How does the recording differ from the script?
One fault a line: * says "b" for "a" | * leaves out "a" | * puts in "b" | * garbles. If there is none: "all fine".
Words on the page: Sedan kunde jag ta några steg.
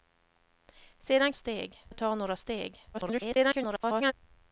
* says "steg" for "kunde"
* garbles